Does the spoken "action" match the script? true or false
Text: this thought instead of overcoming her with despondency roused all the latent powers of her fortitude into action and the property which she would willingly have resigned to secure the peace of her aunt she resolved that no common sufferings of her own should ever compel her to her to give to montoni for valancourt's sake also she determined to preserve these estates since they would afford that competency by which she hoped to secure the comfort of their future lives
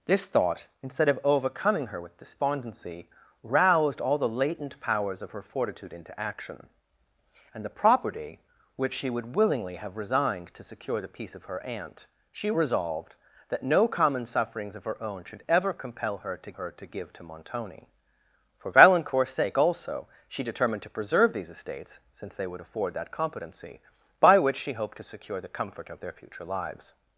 true